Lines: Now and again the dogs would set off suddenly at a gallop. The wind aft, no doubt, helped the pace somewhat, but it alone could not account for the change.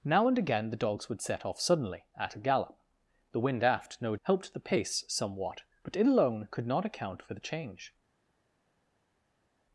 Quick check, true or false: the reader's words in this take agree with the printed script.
false